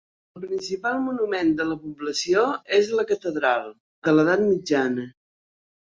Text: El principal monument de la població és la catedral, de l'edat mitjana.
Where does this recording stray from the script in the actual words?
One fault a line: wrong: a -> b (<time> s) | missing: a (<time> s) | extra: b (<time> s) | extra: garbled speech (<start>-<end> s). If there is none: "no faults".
no faults